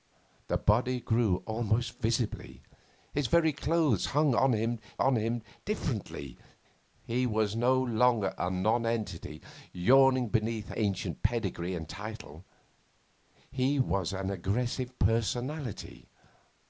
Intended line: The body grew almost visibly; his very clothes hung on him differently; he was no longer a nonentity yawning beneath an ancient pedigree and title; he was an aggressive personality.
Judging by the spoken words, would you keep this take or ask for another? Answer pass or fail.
fail